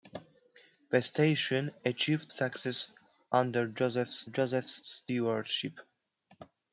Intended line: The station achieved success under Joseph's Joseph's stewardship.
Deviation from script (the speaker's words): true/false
false